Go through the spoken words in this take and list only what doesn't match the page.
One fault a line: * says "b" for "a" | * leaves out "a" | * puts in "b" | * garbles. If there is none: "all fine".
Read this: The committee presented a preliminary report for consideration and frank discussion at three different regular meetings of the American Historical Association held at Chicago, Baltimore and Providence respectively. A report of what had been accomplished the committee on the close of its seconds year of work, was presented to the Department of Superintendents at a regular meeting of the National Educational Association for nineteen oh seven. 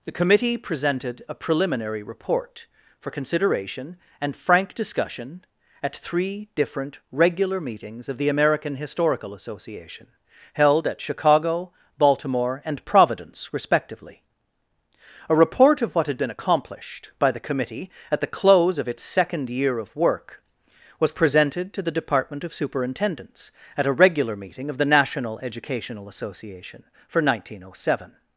* puts in "by"
* says "at" for "on"
* says "second" for "seconds"